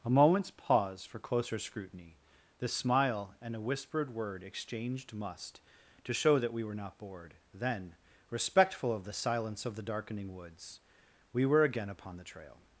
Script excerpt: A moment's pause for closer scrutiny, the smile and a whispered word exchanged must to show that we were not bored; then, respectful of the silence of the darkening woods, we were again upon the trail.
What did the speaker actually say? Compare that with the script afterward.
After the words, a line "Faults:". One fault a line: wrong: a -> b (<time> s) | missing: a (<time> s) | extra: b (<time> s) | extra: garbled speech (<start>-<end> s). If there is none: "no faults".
A moment's pause for closer scrutiny, the smile and a whispered word exchanged must to show that we were not bored; then, respectful of the silence of the darkening woods, we were again upon the trail.
Faults:
no faults